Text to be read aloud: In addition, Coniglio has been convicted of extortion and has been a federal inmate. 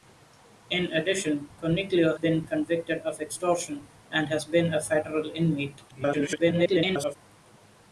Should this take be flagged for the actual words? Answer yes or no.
yes